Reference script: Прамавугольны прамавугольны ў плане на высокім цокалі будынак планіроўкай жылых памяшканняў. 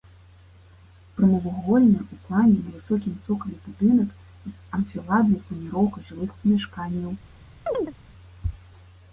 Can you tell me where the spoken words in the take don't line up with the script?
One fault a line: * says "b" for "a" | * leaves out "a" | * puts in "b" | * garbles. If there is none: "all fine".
* leaves out "прамавугольны"
* puts in "з анфіладнай"